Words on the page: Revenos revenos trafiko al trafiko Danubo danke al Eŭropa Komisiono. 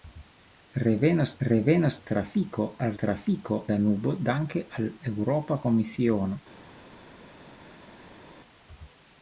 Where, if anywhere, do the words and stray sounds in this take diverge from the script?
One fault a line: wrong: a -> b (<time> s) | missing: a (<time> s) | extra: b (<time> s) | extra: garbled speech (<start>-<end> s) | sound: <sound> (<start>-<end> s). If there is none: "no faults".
no faults